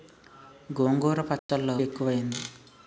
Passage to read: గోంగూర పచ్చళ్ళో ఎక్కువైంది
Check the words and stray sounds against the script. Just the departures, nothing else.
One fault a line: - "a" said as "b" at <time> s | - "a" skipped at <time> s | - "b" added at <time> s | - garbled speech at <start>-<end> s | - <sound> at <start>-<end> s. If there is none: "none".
- dropout at 1.4-1.5 s